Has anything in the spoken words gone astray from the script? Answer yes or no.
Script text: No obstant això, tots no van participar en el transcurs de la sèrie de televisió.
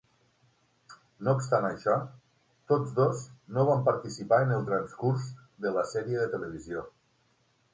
yes